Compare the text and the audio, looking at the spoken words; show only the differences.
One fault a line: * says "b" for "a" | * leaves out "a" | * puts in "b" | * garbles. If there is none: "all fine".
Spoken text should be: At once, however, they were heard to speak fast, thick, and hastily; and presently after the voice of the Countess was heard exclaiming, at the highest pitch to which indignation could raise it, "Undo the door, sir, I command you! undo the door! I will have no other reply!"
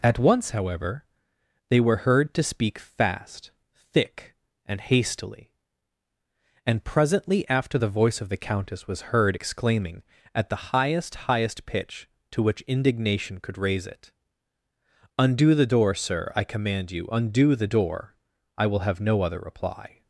* puts in "highest"